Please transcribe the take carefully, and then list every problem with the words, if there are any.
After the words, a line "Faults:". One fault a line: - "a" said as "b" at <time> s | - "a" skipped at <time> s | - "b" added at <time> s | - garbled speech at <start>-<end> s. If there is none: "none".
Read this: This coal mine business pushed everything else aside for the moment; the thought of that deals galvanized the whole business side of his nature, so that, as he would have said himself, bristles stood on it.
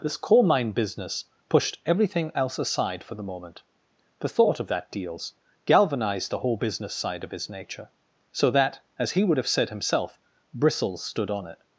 This coal mine business pushed everything else aside for the moment; the thought of that deals galvanized the whole business side of his nature, so that, as he would have said himself, bristles stood on it.
Faults:
none